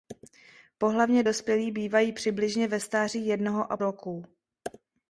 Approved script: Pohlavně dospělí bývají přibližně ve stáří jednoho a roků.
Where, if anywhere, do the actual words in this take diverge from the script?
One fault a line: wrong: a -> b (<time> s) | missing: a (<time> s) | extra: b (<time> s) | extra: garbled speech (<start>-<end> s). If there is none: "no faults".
no faults